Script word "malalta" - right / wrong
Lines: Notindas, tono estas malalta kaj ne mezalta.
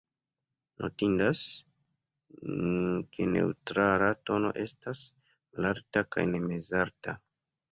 right